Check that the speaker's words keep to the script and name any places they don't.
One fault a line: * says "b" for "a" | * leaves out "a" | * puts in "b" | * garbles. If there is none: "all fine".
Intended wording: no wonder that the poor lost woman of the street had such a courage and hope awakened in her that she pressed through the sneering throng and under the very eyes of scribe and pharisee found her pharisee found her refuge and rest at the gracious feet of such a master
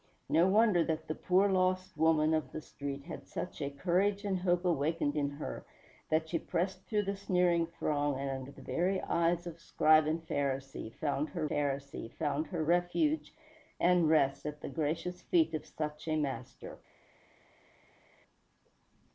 all fine